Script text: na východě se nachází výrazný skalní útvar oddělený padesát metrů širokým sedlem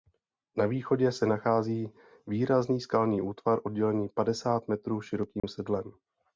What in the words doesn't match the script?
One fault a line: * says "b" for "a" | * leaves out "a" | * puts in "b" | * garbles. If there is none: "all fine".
all fine